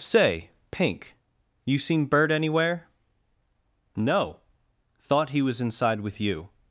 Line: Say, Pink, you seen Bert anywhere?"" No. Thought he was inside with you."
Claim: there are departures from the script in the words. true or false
false